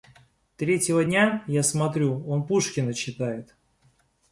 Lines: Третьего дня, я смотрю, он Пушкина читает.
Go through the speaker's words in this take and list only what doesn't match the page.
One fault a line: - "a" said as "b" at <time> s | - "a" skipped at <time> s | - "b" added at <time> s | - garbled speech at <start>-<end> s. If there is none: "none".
none